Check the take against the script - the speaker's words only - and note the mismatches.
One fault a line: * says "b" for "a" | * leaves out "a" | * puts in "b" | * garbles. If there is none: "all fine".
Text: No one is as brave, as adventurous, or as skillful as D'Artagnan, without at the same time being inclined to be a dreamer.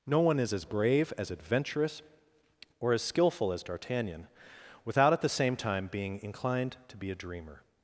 all fine